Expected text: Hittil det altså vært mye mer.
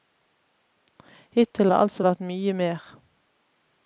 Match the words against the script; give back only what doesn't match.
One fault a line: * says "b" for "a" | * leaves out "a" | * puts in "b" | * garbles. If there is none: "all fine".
all fine